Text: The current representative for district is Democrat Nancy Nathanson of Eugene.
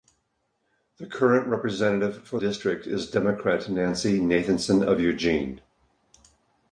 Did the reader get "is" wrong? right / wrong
right